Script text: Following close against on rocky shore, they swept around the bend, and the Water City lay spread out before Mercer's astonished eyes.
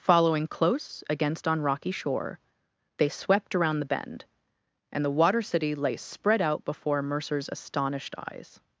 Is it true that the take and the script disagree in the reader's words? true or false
false